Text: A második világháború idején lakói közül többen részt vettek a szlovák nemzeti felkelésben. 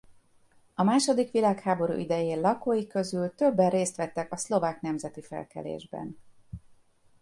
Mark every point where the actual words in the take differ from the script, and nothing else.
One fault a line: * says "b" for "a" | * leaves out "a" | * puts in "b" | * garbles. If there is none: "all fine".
all fine